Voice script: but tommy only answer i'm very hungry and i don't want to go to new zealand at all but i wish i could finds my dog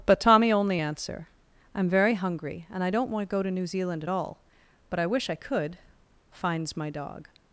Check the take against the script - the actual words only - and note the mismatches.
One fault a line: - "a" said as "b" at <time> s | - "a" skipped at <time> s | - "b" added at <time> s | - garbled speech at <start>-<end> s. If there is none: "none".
none